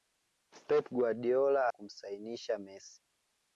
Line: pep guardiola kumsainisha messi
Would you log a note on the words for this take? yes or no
no